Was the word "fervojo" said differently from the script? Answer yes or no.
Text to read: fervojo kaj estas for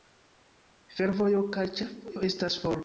no